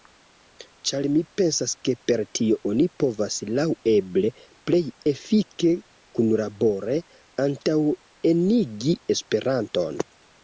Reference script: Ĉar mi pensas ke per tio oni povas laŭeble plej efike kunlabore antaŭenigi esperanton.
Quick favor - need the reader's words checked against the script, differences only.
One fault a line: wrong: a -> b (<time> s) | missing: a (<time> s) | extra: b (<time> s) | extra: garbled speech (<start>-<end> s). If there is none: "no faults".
no faults